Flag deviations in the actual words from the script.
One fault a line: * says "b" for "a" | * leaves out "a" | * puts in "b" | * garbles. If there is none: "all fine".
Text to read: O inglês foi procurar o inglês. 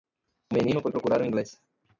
* says "menino" for "inglês"